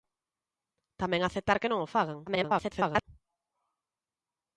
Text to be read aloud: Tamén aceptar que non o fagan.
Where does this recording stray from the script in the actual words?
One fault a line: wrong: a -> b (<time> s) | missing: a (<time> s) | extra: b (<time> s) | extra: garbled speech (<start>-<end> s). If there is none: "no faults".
extra: garbled speech (2.3-3.1 s)